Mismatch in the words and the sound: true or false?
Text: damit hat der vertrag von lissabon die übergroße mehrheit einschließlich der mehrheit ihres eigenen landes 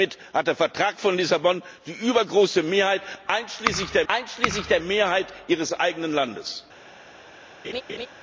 true